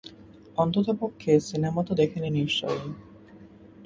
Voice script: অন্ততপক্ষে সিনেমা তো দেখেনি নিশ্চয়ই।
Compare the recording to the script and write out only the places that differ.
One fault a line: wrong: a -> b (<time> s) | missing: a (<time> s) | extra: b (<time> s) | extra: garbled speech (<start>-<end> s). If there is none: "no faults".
no faults